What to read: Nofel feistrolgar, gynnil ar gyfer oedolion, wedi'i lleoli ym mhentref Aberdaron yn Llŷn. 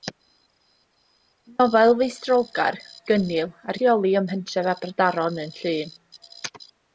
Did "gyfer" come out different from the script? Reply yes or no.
yes